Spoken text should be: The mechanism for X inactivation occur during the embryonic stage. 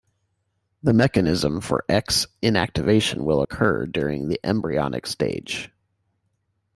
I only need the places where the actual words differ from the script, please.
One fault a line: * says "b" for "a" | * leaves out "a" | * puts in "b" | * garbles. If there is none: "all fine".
* puts in "will"